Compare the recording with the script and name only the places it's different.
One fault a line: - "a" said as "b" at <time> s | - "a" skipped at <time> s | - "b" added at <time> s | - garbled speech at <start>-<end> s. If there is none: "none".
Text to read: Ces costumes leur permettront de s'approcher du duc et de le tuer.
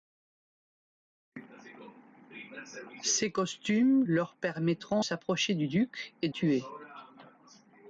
- "de" skipped at 5.0 s
- "de le" skipped at 6.3 s